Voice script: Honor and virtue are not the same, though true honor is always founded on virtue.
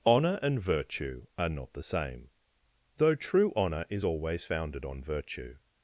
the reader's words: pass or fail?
pass